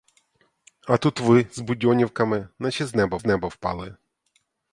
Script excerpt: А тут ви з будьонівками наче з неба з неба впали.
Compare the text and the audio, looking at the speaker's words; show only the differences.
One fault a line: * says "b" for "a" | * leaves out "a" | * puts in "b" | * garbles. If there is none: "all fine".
all fine